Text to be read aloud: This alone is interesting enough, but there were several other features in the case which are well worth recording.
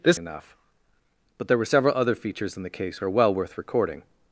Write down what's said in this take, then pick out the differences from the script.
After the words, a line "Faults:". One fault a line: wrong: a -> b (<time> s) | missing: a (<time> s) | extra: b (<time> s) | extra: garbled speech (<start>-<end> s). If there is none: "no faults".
This enough, but there were several other features in the case are well worth recording.
Faults:
missing: alone is interesting (0.2 s)
missing: which (3.0 s)